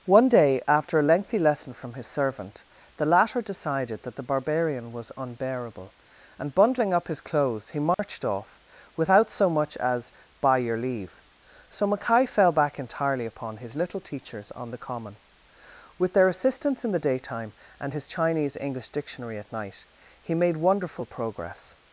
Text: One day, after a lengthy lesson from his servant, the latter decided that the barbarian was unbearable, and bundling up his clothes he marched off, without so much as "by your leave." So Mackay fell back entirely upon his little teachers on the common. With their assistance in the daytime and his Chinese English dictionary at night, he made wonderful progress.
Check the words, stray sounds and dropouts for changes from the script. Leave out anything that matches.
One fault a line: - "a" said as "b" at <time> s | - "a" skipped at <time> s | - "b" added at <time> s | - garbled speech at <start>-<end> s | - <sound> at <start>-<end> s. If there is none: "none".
- dropout at 7.9-8.0 s